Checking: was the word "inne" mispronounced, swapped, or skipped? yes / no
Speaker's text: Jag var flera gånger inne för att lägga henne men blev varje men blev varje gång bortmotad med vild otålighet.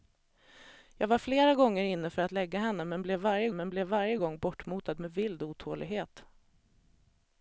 no